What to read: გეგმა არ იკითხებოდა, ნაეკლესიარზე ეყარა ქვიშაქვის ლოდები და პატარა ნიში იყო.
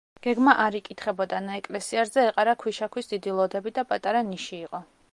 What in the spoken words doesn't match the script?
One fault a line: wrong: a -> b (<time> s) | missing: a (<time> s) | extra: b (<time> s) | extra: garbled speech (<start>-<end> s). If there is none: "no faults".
extra: დიდი (3.1 s)